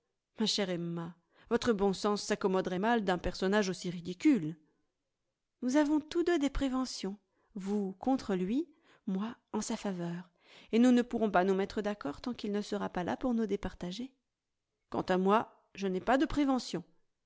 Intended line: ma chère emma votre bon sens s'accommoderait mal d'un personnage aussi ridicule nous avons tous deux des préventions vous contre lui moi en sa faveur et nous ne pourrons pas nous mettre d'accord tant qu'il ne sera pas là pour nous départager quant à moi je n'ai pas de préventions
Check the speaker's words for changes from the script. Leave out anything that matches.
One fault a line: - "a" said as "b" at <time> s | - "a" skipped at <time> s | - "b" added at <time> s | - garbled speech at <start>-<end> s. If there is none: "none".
none